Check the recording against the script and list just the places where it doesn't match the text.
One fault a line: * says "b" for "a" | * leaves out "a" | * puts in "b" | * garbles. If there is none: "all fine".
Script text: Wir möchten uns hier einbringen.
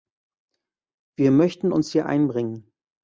all fine